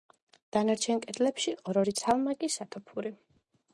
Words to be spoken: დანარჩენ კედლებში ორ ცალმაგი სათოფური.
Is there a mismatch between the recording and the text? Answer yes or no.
yes